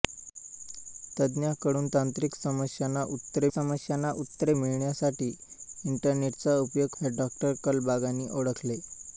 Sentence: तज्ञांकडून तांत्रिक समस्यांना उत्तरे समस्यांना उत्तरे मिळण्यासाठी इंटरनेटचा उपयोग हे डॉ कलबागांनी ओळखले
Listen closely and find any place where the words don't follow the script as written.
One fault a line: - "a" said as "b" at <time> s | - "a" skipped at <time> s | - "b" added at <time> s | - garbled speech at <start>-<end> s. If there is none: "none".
none